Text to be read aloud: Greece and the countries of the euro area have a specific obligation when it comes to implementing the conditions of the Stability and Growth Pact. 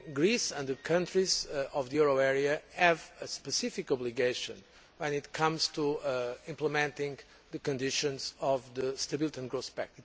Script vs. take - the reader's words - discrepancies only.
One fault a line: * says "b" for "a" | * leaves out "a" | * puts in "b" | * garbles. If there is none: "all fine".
all fine